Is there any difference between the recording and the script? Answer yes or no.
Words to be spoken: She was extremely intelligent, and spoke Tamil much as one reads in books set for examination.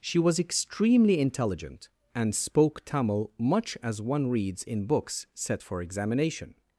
no